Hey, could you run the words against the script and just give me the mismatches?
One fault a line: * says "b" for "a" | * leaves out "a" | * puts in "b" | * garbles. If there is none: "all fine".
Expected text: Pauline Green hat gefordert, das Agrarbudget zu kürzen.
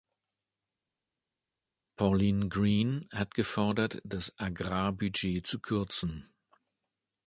all fine